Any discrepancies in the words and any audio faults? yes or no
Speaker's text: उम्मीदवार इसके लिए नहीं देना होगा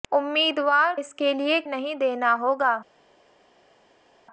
no